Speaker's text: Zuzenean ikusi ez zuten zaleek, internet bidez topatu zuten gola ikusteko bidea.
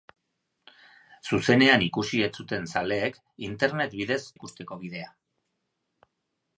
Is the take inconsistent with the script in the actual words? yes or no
yes